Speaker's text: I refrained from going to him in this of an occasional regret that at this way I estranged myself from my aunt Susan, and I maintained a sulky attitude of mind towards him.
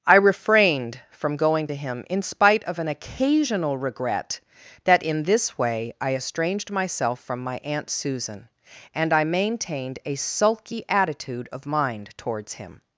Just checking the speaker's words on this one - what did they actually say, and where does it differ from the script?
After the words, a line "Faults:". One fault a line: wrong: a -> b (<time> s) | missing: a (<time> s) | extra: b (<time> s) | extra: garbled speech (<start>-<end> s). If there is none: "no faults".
I refrained from going to him in spite of an occasional regret that in this way I estranged myself from my aunt Susan, and I maintained a sulky attitude of mind towards him.
Faults:
wrong: this -> spite (2.2 s)
wrong: at -> in (5.0 s)